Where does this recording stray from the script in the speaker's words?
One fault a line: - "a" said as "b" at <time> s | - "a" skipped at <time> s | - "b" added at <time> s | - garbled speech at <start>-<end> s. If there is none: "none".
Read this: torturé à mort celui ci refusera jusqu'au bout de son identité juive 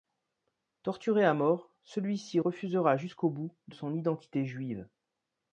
none